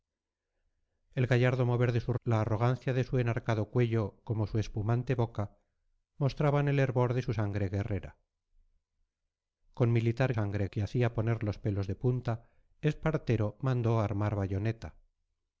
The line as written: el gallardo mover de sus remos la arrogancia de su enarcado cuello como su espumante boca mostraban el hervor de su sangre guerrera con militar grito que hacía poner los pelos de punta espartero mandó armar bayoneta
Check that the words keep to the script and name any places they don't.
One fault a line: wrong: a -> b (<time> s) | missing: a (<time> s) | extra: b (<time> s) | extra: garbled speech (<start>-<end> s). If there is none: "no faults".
missing: remos (2.1 s)
wrong: grito -> sangre (10.3 s)